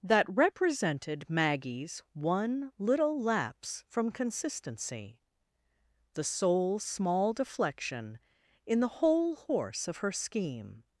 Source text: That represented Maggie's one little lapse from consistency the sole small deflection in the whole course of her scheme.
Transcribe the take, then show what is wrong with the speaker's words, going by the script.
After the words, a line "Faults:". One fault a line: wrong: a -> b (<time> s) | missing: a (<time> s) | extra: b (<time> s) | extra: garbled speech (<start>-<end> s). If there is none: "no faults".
That represented Maggie's one little lapse from consistency the sole small deflection in the whole horse of her scheme.
Faults:
wrong: course -> horse (9.3 s)